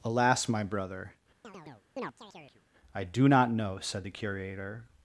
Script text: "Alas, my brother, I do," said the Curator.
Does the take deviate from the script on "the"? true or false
false